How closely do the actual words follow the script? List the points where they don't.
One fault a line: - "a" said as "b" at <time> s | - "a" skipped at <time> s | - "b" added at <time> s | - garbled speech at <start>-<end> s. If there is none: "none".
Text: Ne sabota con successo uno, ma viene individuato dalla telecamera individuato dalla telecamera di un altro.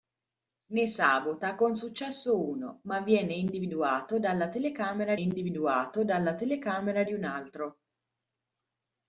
none